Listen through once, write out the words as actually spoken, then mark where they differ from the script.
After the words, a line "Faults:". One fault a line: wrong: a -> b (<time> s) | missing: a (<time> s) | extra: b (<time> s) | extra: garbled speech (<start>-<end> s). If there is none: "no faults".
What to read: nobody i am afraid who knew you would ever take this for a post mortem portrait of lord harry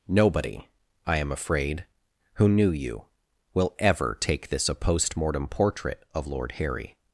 nobody i am afraid who knew you will ever take this a post mortem portrait of lord harry
Faults:
wrong: would -> will (3.5 s)
missing: for (4.7 s)